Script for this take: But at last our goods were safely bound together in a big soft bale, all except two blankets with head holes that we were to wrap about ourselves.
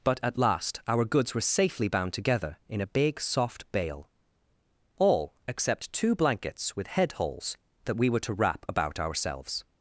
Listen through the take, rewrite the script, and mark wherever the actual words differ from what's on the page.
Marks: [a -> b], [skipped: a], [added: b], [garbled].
But at last our goods were safely bound together in a big soft bale, all except two blankets with head holes that we were to wrap about ourselves.